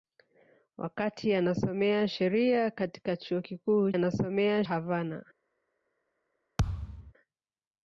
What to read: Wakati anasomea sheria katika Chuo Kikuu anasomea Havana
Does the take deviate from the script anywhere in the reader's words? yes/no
no